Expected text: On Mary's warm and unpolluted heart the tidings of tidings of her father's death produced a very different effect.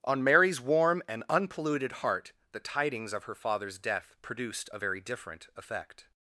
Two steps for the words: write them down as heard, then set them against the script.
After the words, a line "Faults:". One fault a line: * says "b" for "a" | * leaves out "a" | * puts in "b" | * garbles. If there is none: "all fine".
On Mary's warm and unpolluted heart the tidings of her father's death produced a very different effect.
Faults:
* leaves out "tidings of"